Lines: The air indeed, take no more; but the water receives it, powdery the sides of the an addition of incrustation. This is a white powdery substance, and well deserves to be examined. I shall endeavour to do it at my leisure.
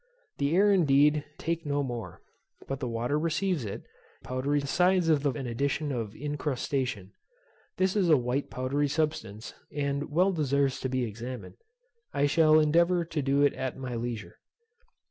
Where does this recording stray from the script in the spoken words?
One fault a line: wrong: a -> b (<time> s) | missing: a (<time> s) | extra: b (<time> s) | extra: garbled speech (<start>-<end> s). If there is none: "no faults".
no faults